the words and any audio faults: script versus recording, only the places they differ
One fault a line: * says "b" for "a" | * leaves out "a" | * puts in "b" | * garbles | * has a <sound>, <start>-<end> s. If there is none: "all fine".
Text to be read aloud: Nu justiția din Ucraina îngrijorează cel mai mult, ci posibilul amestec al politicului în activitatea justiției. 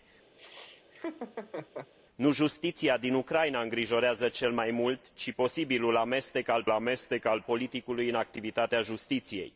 * has a laugh, 0.4-1.9 s
* puts in "amestec al"